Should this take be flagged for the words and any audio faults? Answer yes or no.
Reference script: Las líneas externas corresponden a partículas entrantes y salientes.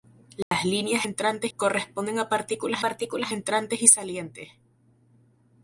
yes